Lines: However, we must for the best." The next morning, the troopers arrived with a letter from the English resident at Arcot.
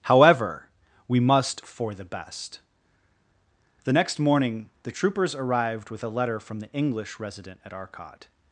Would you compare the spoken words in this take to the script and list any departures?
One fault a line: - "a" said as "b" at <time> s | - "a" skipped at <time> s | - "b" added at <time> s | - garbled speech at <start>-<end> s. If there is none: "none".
none